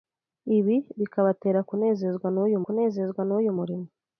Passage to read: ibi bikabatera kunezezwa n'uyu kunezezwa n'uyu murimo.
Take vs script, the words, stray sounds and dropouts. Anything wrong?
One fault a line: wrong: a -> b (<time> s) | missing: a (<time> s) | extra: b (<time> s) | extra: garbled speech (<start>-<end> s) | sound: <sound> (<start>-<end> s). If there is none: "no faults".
no faults